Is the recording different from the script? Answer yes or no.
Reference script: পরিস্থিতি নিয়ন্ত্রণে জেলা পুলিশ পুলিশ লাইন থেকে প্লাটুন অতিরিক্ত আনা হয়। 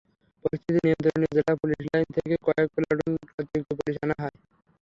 yes